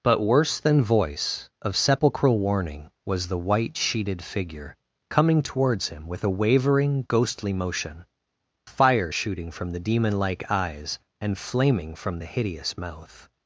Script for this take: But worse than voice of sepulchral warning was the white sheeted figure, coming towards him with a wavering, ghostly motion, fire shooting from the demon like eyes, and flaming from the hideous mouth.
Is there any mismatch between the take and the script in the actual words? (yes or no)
no